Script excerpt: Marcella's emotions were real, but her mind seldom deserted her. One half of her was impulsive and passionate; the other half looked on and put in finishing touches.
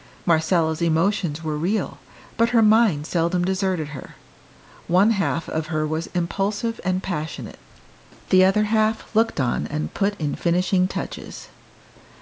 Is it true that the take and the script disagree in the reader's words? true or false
false